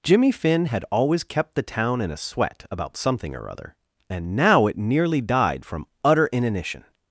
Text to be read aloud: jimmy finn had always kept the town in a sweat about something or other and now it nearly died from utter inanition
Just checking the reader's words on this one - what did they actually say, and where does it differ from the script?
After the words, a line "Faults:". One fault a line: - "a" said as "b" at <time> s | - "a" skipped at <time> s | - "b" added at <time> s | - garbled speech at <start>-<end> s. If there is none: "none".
jimmy finn had always kept the town in a sweat about something or other and now it nearly died from utter inanition
Faults:
none